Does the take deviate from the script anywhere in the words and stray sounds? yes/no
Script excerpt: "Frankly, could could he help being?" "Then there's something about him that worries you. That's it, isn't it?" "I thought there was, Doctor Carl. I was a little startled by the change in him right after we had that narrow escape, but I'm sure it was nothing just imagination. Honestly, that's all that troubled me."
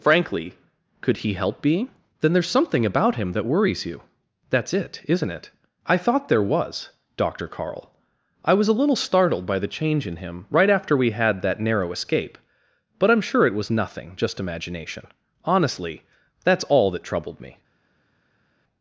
yes